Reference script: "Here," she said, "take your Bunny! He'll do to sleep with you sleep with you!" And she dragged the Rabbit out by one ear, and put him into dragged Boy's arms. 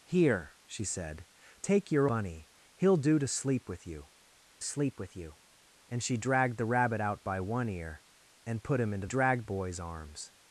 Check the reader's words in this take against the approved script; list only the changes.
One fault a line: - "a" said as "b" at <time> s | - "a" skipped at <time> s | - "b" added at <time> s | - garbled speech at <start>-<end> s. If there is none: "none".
none